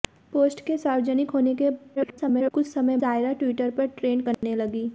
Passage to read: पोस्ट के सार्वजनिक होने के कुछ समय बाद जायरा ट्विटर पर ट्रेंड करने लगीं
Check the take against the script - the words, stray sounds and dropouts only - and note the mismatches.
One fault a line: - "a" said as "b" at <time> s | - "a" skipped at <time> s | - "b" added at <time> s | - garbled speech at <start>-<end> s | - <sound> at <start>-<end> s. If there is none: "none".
- garbled speech at 2.0-2.5 s
- "बाद" skipped at 3.0 s
- dropout at 4.3-4.4 s